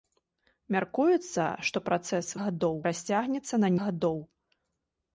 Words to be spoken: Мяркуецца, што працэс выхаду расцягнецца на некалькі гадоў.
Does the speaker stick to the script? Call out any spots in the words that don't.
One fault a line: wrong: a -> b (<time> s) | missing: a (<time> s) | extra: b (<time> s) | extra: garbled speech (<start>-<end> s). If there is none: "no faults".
wrong: выхаду -> гадоў (2.4 s)
missing: некалькі (3.7 s)